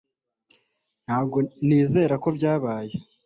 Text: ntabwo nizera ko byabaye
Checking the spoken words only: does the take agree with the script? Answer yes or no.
yes